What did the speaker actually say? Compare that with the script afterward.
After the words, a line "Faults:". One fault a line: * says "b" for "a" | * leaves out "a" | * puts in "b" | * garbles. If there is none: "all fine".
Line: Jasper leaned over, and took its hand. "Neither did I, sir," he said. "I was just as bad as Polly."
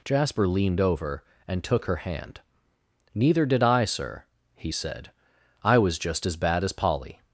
Jasper leaned over, and took her hand. "Neither did I, sir," he said. "I was just as bad as Polly."
Faults:
* says "her" for "its"